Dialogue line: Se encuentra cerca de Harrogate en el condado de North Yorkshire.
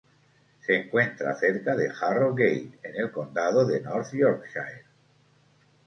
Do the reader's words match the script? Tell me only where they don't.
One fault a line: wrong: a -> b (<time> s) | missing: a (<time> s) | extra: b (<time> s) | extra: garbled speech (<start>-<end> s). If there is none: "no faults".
no faults